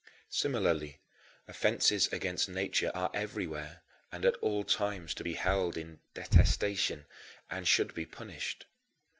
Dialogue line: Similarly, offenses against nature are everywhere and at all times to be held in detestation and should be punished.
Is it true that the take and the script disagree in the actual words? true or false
false